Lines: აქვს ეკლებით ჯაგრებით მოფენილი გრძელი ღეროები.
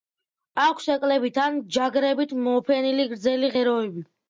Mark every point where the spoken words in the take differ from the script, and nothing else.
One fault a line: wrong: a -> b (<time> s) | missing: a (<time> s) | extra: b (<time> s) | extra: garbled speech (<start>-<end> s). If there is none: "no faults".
extra: ან (1.4 s)